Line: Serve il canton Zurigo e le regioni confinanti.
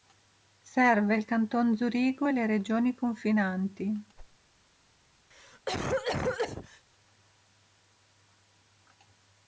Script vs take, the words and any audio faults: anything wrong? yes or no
yes